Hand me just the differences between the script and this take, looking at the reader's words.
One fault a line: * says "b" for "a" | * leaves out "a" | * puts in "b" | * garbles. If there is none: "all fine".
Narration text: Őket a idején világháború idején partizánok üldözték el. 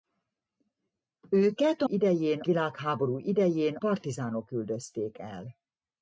all fine